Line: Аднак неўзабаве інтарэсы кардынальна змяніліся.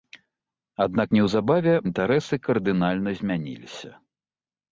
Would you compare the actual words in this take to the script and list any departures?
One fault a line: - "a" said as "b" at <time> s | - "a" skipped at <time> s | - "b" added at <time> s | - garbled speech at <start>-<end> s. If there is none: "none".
none